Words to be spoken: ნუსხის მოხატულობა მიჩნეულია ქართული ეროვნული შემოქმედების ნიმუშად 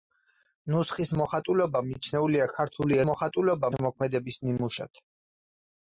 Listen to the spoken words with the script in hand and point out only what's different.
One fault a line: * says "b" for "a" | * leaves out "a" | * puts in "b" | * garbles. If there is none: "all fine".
* says "მოხატულობა" for "ეროვნული"